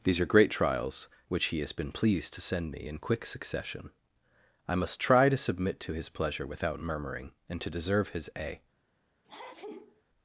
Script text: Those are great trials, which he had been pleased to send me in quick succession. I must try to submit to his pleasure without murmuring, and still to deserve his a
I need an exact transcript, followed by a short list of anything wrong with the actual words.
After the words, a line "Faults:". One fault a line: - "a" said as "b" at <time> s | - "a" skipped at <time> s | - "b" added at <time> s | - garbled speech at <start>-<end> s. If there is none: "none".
These are great trials, which he has been pleased to send me in quick succession. I must try to submit to his pleasure without murmuring, and to deserve his a
Faults:
- "Those" said as "These" at 0.0 s
- "had" said as "has" at 1.6 s
- "still" skipped at 7.6 s